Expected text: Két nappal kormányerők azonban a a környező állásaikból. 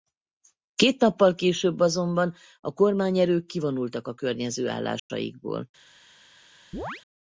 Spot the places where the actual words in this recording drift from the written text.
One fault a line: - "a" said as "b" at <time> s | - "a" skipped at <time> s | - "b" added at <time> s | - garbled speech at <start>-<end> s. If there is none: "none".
- "kormányerők" said as "később" at 1.4 s
- "kormányerők kivonultak" added at 2.7 s